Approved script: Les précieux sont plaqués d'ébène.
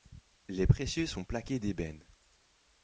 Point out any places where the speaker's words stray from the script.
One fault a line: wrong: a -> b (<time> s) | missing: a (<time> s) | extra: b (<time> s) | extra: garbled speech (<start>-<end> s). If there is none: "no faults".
no faults